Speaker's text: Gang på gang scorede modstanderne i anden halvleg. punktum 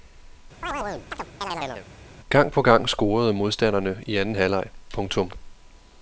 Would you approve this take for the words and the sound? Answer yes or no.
no